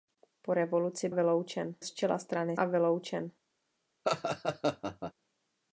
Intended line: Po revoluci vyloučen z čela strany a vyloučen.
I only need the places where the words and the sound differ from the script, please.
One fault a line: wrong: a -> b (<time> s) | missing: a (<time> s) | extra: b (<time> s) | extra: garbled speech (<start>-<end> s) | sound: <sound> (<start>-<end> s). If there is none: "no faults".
sound: laugh (4.0-5.1 s)